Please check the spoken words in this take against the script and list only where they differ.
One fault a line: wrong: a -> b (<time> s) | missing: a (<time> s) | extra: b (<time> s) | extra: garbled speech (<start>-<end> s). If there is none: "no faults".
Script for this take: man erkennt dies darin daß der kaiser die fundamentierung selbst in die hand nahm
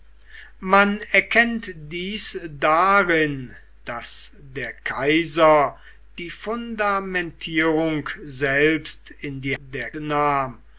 wrong: hand -> der (9.6 s)